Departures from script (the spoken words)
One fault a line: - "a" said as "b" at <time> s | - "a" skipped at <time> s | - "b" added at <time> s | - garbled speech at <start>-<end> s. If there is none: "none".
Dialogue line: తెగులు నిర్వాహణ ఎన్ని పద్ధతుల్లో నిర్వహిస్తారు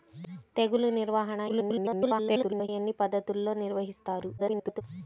- garbled speech at 1.5-2.7 s
- garbled speech at 4.4-4.8 s